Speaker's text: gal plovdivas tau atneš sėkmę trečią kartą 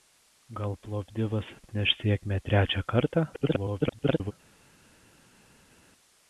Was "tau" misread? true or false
true